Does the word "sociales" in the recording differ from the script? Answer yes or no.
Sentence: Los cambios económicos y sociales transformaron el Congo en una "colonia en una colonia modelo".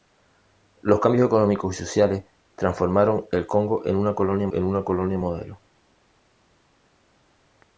no